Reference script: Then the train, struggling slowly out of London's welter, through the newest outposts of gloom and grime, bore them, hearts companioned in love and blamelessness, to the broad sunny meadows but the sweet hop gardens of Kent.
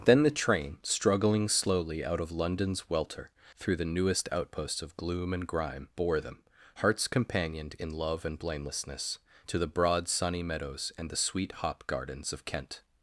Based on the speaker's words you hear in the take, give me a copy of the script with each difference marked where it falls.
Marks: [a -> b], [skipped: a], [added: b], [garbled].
Then the train, struggling slowly out of London's welter, through the newest outposts of gloom and grime, bore them, hearts companioned in love and blamelessness, to the broad sunny meadows [but -> and] the sweet hop gardens of Kent.